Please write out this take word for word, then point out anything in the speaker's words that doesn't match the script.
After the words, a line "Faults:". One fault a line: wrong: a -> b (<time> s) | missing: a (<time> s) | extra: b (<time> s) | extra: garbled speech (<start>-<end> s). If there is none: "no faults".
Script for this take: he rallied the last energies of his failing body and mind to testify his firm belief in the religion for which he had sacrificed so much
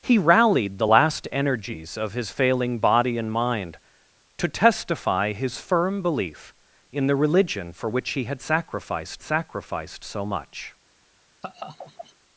he rallied the last energies of his failing body and mind to testify his firm belief in the religion for which he had sacrificed sacrificed so much
Faults:
extra: sacrificed (9.2 s)